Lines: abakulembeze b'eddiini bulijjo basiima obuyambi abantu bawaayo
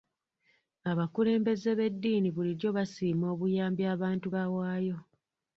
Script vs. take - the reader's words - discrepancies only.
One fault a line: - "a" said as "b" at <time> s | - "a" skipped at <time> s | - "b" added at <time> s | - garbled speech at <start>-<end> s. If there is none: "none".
none